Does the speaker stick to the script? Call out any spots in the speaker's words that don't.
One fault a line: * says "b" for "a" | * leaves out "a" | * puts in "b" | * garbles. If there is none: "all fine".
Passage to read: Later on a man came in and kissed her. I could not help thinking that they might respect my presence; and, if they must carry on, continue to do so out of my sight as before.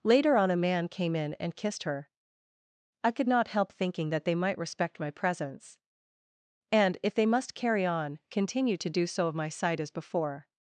* leaves out "out"